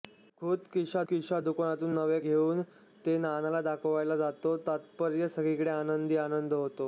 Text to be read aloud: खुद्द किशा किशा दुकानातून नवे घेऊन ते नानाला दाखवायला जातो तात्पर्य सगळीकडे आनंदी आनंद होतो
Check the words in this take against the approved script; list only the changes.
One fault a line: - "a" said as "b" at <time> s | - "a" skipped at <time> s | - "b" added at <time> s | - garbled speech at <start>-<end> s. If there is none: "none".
none